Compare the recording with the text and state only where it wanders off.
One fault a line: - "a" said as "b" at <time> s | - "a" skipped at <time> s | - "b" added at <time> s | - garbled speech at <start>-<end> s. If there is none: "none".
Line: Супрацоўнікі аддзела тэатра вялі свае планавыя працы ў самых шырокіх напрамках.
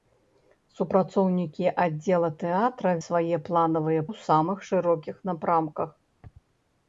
- "вялі" skipped at 2.9 s
- "працы" skipped at 4.0 s